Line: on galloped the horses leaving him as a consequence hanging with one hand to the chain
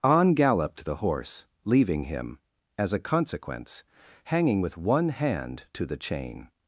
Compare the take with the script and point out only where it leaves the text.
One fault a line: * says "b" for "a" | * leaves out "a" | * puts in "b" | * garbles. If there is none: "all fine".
* says "horse" for "horses"